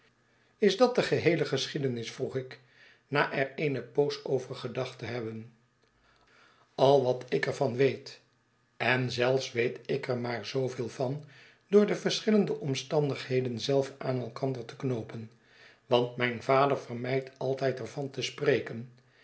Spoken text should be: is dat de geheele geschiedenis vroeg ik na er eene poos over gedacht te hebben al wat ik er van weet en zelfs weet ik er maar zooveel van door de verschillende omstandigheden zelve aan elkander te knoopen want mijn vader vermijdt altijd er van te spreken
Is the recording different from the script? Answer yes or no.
no